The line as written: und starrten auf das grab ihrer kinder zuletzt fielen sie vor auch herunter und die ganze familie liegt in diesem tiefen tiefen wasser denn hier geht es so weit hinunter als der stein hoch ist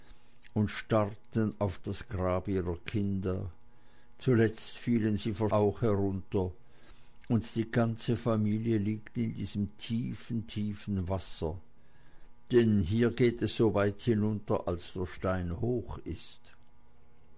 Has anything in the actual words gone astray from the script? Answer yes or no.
no